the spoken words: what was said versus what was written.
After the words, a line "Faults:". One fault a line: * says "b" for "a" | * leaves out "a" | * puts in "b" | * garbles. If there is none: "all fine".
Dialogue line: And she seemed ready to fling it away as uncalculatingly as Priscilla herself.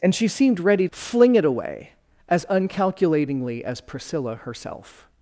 And she seemed ready fling it away as uncalculatingly as Priscilla herself.
Faults:
* leaves out "to"